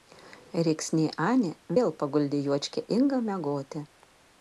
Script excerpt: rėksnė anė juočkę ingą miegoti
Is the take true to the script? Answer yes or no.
no